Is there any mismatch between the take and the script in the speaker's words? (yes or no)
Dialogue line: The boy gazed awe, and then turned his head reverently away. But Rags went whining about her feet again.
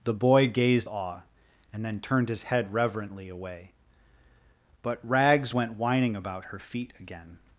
no